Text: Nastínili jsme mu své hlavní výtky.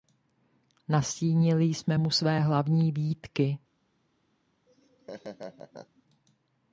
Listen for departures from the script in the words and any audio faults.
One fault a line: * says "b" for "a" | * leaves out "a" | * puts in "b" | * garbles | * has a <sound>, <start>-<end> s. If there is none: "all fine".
* has a laugh, 4.7-6.0 s